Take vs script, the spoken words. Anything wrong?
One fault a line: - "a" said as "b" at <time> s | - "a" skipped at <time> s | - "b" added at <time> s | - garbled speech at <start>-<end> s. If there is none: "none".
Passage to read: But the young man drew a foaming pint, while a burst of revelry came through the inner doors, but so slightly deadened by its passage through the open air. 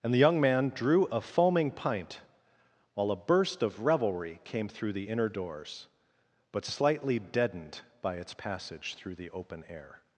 - "But" said as "And" at 0.0 s
- "so" skipped at 6.6 s